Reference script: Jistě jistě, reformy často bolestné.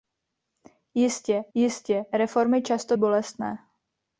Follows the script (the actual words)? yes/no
yes